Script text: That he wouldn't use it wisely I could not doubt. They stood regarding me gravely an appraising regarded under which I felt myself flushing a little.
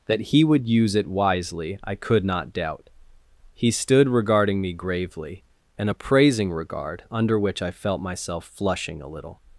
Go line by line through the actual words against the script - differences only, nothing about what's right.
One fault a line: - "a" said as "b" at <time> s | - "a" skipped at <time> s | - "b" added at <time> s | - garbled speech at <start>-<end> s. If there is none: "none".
- "wouldn't" said as "would" at 0.4 s
- "They" said as "He" at 3.5 s
- "regarded" said as "regard" at 6.5 s